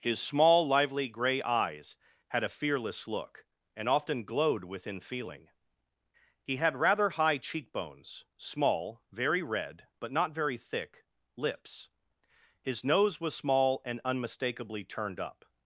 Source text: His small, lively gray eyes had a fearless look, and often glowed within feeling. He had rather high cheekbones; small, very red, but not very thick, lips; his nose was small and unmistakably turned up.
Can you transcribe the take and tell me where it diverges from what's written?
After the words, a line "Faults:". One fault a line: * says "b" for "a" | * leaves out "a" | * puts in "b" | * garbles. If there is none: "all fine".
His small, lively gray eyes had a fearless look, and often glowed within feeling. He had rather high cheekbones; small, very red, but not very thick, lips; his nose was small and unmistakably turned up.
Faults:
all fine